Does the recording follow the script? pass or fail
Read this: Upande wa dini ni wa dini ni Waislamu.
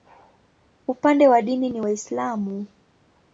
fail